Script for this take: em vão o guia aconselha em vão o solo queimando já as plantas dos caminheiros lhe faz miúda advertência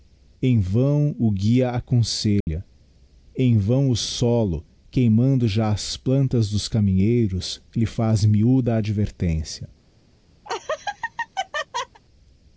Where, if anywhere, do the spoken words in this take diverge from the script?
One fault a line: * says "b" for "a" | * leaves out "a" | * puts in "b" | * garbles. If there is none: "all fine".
all fine